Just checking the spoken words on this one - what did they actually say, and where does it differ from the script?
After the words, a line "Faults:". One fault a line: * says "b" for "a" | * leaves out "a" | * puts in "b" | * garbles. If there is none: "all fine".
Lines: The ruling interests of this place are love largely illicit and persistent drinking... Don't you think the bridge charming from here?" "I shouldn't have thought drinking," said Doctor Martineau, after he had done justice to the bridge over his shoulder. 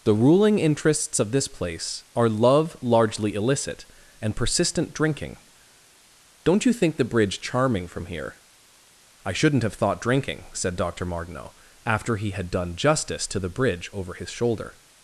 The ruling interests of this place are love largely illicit and persistent drinking... Don't you think the bridge charming from here?" "I shouldn't have thought drinking," said Doctor Martineau, after he had done justice to the bridge over his shoulder.
Faults:
all fine